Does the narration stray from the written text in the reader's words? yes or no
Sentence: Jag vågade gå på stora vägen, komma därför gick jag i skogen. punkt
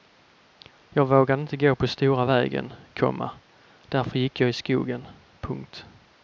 yes